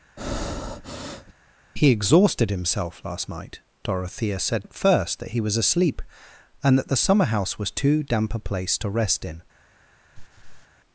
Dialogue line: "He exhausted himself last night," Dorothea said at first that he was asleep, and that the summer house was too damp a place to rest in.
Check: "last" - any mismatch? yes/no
no